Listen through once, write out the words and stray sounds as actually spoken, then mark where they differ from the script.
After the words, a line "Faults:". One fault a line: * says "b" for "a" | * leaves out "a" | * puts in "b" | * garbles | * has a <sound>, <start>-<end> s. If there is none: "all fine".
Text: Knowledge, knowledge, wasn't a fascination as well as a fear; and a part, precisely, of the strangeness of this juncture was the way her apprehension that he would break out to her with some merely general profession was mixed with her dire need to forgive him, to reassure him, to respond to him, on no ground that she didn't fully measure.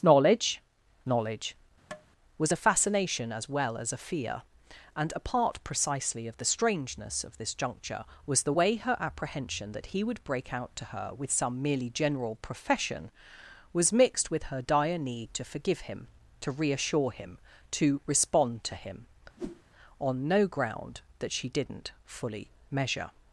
Knowledge, knowledge, was a fascination as well as a fear; and a part, precisely, of the strangeness of this juncture was the way her apprehension that he would break out to her with some merely general profession was mixed with her dire need to forgive him, to reassure him, to respond to him, on no ground that she didn't fully measure.
Faults:
* has a tap, 1.9-2.1 s
* says "was" for "wasn't"
* has a whoosh, 19.4-19.6 s